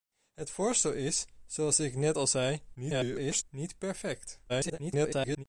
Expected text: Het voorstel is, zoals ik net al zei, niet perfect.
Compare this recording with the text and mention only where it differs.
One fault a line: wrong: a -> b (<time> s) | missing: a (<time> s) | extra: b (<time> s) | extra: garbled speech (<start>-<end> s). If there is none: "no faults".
extra: garbled speech (2.7-3.4 s)
extra: garbled speech (4.5-5.4 s)